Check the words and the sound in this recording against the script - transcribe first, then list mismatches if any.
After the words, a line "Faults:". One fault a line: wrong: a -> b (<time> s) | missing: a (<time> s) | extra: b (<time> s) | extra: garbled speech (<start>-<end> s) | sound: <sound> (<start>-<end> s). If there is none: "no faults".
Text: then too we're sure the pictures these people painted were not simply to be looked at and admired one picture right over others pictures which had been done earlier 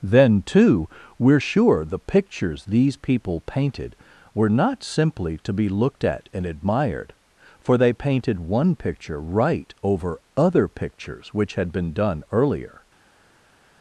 then too we're sure the pictures these people painted were not simply to be looked at and admired for they painted one picture right over other pictures which had been done earlier
Faults:
extra: for they painted (7.6 s)
wrong: others -> other (10.4 s)